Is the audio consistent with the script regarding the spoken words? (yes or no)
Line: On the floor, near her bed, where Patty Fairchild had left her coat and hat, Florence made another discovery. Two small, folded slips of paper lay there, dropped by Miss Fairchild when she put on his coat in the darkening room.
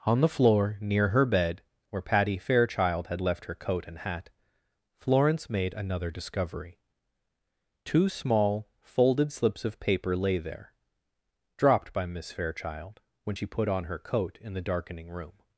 no